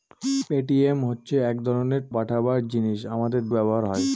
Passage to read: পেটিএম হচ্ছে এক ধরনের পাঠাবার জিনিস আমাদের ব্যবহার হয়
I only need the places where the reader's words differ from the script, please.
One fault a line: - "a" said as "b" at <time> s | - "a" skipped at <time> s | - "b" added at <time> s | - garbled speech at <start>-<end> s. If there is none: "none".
none